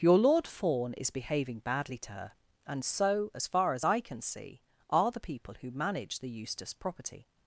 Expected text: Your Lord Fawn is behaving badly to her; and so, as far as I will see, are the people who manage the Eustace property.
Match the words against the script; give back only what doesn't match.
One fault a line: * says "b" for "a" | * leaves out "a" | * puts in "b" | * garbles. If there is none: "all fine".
* says "can" for "will"